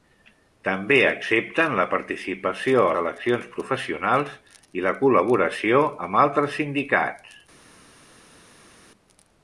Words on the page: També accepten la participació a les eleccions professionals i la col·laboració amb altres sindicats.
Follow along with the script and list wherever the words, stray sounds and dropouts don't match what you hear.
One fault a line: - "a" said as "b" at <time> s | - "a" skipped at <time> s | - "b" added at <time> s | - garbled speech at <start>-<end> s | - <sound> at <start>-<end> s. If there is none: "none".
- "les" skipped at 3.0 s